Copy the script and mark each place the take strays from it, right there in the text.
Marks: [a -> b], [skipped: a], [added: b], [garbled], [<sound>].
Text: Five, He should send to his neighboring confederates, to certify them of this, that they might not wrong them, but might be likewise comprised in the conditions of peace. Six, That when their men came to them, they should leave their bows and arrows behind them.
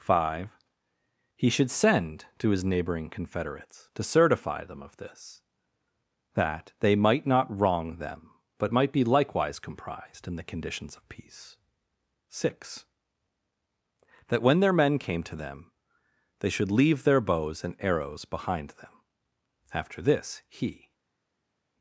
Five, He should send to his neighboring confederates, to certify them of this, that they might not wrong them, but might be likewise comprised in the conditions of peace. Six, That when their men came to them, they should leave their bows and arrows behind them. [added: After this he]